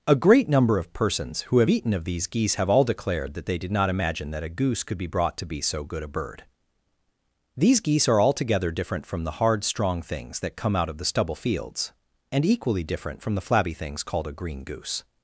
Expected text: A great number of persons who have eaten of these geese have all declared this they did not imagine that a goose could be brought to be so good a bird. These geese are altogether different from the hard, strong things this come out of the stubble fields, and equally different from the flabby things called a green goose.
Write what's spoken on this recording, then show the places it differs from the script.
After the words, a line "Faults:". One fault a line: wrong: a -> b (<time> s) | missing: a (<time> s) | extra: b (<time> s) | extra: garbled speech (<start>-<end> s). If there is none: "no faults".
A great number of persons who have eaten of these geese have all declared that they did not imagine that a goose could be brought to be so good a bird. These geese are altogether different from the hard, strong things that come out of the stubble fields, and equally different from the flabby things called a green goose.
Faults:
wrong: this -> that (3.3 s)
wrong: this -> that (10.4 s)